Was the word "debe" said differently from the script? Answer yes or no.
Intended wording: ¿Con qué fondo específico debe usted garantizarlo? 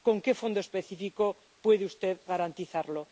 yes